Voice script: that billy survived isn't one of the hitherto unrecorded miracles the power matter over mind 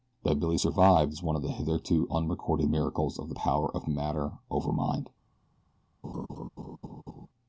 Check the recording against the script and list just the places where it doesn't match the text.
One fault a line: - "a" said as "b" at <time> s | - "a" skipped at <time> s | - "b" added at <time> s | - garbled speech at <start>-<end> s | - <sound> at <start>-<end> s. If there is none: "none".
- "isn't" said as "is" at 1.1 s
- "of" added at 3.2 s
- "of" added at 3.8 s
- laugh at 6.0-7.3 s